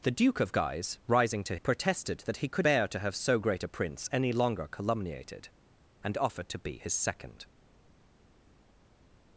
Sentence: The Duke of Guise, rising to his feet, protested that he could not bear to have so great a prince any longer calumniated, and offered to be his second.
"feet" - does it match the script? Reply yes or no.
no